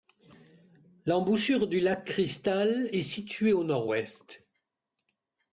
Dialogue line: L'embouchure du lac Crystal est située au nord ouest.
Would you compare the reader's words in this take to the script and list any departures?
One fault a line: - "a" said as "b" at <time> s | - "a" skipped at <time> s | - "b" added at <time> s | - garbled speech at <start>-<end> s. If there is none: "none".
none